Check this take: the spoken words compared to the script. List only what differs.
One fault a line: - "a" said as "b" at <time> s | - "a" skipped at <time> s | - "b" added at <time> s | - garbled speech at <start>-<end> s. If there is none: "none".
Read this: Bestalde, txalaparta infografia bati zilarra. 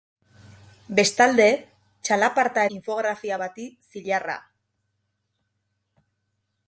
none